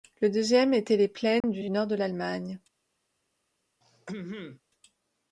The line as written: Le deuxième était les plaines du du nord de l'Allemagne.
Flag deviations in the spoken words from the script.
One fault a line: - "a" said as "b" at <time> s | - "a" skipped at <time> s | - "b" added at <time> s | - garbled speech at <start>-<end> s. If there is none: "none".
none